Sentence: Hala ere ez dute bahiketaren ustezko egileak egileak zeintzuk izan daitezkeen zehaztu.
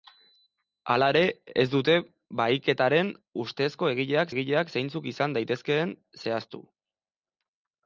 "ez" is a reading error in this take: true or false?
false